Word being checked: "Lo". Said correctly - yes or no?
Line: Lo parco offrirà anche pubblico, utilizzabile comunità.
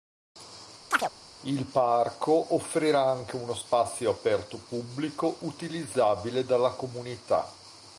no